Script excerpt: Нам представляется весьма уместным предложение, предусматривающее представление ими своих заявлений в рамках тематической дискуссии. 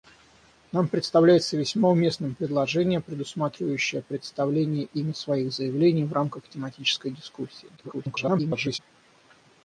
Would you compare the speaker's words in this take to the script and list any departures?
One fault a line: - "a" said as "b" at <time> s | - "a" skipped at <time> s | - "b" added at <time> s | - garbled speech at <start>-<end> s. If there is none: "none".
- garbled speech at 7.8-8.8 s